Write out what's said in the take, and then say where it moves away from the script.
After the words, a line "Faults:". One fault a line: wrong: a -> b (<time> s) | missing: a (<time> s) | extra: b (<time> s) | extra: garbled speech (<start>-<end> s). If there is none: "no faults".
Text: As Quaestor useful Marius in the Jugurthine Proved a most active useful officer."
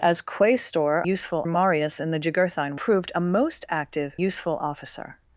As Quaestor useful Marius in the Jugurthine Proved a most active useful officer."
Faults:
no faults